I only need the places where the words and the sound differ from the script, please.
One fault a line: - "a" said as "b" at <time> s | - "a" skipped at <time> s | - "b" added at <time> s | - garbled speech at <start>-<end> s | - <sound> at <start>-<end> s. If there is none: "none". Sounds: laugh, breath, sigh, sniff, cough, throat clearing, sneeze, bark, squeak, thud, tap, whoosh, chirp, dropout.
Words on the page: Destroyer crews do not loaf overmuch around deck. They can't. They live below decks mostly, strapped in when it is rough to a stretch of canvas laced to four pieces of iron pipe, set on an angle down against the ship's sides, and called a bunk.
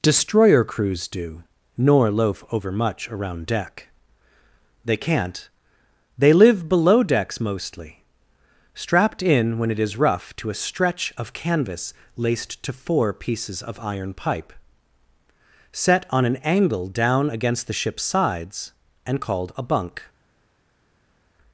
- "not" said as "nor" at 1.8 s